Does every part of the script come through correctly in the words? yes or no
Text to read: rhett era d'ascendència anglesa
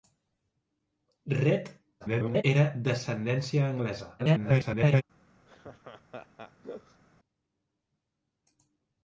no